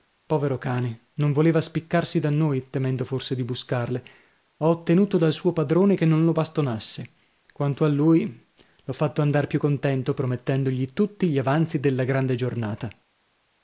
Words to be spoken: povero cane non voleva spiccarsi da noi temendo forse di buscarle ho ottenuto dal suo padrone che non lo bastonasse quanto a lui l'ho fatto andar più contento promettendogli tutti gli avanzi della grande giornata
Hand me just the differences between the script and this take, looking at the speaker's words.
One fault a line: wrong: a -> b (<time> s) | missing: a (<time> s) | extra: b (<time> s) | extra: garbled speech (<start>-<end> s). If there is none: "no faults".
no faults